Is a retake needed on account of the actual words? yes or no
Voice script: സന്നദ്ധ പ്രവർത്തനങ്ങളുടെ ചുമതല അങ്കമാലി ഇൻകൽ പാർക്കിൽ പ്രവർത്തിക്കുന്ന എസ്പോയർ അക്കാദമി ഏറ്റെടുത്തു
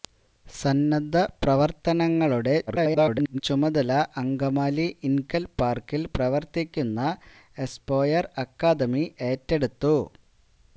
yes